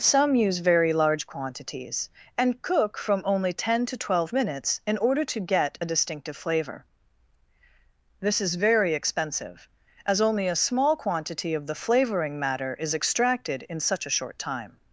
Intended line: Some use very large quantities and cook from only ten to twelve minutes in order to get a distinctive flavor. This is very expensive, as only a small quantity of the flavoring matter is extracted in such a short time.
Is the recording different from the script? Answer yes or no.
no